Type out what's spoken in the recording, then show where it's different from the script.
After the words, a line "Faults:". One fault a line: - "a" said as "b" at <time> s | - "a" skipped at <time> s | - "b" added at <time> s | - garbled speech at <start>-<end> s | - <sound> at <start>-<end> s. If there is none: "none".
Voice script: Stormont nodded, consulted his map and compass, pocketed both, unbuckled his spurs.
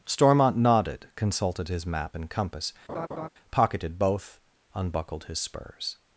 Stormont nodded, consulted his map and compass, pocketed both, unbuckled his spurs.
Faults:
- laugh at 2.9-3.3 s